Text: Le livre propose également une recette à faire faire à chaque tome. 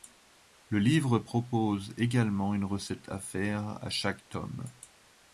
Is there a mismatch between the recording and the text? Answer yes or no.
yes